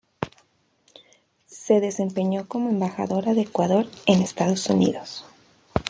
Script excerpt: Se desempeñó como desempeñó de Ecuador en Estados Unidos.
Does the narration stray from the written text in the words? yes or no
yes